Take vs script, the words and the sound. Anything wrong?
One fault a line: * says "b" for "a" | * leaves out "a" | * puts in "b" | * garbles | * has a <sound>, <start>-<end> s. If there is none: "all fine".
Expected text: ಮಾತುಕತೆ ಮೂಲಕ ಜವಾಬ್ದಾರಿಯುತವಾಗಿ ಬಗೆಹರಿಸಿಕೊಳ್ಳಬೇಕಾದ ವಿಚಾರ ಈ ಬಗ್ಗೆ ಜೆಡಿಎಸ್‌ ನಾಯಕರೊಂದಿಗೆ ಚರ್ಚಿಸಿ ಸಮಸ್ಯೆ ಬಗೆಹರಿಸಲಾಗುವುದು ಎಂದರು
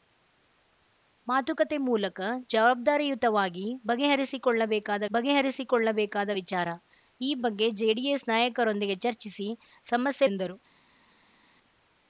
* puts in "ಬಗೆಹರಿಸಿಕೊಳ್ಳಬೇಕಾದ"
* leaves out "ಬಗೆಹರಿಸಲಾಗುವುದು"